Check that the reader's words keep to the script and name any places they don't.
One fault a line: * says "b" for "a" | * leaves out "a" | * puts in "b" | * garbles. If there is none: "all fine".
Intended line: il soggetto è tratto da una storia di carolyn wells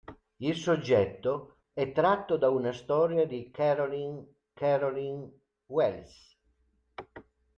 * puts in "carolyn"